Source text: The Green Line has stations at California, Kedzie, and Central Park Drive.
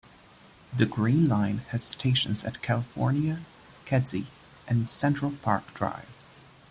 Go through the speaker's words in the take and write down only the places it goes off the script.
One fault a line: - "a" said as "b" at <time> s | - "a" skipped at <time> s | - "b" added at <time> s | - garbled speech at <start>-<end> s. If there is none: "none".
none